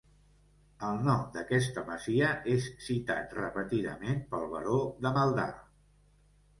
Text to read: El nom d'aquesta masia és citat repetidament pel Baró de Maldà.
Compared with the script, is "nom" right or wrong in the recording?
right